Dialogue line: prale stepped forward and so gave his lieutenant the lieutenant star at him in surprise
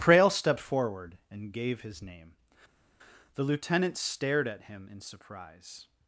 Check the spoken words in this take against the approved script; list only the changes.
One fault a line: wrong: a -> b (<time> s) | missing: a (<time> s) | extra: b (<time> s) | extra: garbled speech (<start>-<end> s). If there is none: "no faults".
missing: so (1.5 s)
wrong: lieutenant -> name (2.0 s)
wrong: star -> stared (4.0 s)